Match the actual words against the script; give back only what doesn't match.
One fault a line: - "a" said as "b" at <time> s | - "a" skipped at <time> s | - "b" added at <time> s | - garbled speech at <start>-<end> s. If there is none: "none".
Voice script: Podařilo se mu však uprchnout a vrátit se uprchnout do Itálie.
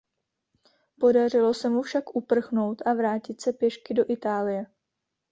- "uprchnout" said as "pěšky" at 3.5 s